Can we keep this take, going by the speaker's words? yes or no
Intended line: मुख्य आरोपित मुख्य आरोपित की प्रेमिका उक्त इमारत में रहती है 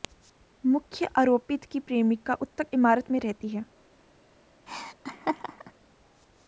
no